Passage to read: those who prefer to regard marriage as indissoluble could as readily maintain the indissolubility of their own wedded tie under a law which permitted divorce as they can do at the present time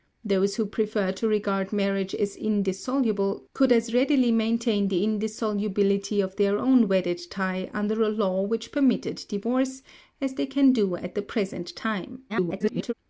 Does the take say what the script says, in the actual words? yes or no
no